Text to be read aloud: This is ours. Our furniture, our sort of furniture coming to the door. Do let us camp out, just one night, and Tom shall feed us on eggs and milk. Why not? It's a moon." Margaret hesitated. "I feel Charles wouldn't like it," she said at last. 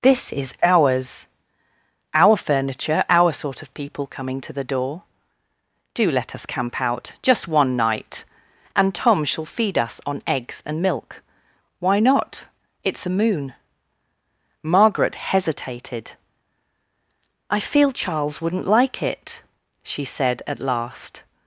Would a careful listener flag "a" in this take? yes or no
no